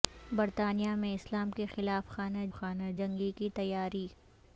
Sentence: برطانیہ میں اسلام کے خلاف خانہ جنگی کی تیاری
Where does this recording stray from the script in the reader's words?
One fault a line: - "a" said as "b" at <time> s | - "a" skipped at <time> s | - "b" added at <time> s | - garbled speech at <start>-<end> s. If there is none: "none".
- "خانہ" added at 2.5 s